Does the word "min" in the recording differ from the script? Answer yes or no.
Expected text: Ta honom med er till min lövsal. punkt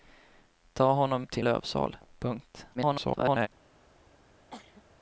yes